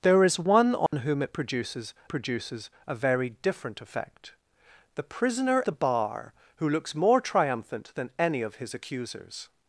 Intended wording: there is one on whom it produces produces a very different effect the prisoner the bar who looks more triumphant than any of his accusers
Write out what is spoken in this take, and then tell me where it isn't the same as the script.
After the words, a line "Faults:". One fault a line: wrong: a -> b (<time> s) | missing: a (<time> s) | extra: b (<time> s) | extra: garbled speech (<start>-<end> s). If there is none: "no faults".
there is one on whom it produces produces a very different effect the prisoner the bar who looks more triumphant than any of his accusers
Faults:
no faults